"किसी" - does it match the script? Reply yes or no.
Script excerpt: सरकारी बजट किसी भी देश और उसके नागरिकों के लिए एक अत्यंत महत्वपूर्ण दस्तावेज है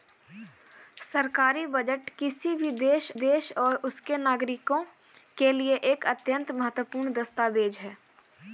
yes